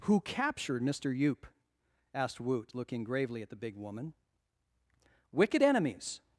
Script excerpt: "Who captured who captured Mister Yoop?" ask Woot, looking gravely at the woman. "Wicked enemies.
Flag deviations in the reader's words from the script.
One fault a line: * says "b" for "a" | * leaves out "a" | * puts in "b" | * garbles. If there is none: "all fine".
* leaves out "who captured"
* says "asked" for "ask"
* puts in "big"